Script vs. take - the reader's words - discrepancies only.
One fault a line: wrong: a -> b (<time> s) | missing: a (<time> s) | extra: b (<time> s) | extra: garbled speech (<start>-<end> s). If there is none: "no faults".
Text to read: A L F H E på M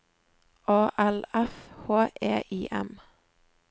wrong: på -> I (2.5 s)